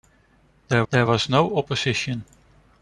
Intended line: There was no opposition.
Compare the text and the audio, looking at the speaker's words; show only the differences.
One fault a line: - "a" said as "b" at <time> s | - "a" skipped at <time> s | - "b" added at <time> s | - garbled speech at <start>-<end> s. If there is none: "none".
- "there" added at 0.9 s